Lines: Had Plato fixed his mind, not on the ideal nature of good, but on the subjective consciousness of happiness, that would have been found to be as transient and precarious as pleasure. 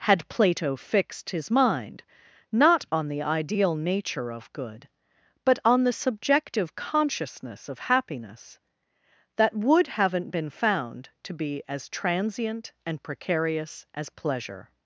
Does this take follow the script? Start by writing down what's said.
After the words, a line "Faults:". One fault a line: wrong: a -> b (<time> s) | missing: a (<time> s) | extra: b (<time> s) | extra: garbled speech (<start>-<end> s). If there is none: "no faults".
Had Plato fixed his mind, not on the ideal nature of good, but on the subjective consciousness of happiness, that would haven't been found to be as transient and precarious as pleasure.
Faults:
wrong: have -> haven't (9.8 s)